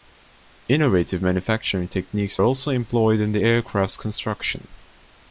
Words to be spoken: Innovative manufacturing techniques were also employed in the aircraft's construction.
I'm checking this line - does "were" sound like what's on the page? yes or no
no